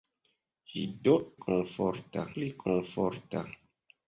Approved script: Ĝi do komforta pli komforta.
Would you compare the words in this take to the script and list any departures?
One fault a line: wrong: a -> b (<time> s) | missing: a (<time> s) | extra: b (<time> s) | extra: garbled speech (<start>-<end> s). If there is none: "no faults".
no faults